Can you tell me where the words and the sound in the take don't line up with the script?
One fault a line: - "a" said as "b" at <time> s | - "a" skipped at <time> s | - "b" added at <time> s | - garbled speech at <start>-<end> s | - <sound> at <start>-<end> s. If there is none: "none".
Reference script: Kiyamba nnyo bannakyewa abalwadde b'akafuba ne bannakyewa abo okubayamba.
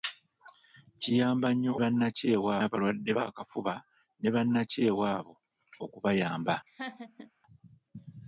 - laugh at 6.7-7.3 s